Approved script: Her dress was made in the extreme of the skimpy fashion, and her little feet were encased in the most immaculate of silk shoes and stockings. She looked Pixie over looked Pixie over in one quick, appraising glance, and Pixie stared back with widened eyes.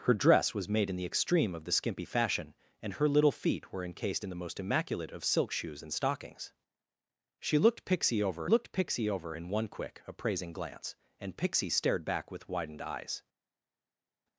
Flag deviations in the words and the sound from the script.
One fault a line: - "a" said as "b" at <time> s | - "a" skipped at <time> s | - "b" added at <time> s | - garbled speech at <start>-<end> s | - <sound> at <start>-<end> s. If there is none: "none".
none